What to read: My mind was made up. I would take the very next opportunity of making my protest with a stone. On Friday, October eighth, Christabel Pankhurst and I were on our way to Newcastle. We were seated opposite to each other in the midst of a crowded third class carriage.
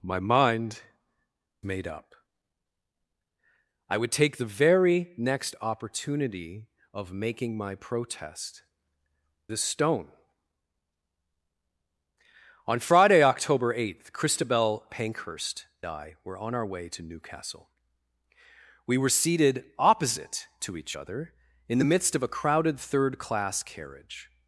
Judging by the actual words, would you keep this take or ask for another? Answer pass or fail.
fail